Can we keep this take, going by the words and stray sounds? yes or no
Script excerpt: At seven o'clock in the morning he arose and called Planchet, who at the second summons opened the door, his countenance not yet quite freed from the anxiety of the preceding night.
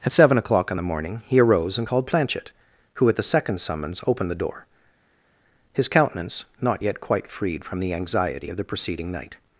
yes